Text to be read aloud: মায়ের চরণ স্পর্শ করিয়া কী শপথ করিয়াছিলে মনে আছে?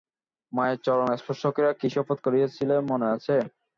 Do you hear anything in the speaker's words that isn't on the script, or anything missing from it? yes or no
no